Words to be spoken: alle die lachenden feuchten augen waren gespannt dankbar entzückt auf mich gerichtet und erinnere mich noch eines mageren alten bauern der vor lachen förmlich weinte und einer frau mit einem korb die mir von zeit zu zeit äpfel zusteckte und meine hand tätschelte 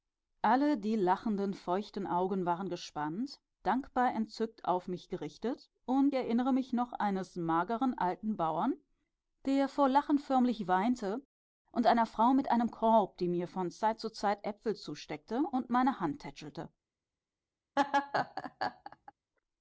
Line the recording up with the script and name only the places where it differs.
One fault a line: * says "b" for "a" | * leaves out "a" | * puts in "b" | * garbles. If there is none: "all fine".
all fine